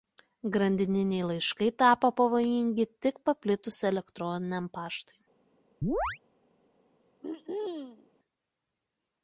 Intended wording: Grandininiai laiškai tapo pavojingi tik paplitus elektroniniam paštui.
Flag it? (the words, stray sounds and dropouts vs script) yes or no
yes